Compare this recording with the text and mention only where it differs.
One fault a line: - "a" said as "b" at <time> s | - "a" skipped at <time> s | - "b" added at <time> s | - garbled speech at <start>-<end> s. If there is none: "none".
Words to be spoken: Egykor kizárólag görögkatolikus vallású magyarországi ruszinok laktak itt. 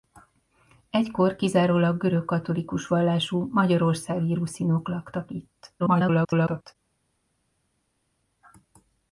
- garbled speech at 5.8-6.8 s